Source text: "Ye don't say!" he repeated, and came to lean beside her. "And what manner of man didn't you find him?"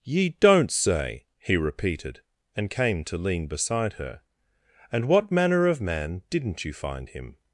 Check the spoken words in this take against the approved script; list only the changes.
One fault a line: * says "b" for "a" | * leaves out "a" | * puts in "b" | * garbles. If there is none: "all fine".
all fine